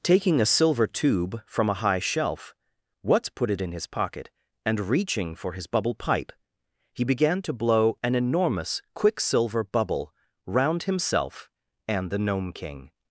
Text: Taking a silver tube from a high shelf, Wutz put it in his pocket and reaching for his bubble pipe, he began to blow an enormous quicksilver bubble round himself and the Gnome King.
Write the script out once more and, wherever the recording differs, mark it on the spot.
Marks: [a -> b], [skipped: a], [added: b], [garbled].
Taking a silver tube from a high shelf, Wutz put it in his pocket and reaching for his bubble pipe, he began to blow an enormous quicksilver bubble round himself and the Gnome King.